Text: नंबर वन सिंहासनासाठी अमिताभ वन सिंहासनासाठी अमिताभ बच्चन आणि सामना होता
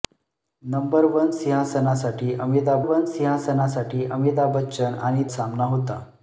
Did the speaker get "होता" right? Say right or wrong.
right